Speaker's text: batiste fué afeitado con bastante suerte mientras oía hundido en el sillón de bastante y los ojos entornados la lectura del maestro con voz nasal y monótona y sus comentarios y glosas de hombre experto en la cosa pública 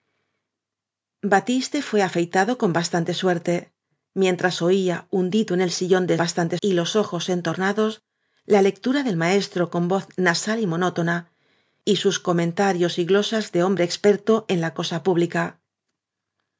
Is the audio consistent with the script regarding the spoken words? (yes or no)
yes